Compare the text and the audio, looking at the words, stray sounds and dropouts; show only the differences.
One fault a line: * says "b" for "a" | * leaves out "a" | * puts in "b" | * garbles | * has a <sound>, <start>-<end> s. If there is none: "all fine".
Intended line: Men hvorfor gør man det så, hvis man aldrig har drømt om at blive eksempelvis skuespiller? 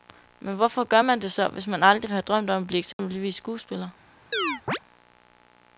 * has a dropout, 2.9-3.0 s
* has a chirp, 4.3-4.8 s